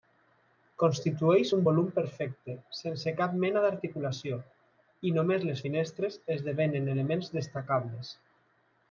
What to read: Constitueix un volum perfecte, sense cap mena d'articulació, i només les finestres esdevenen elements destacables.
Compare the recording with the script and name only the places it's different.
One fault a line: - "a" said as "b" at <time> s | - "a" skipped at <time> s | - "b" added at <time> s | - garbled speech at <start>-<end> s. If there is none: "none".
none